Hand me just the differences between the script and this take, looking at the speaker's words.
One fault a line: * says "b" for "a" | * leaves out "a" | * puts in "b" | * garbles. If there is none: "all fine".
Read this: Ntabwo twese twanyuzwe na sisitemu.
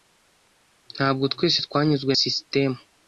* leaves out "na"